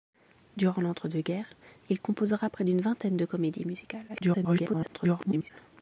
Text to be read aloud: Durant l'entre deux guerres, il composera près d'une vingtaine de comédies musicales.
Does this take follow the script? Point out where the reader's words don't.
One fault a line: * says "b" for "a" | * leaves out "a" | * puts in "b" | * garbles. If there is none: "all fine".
* garbles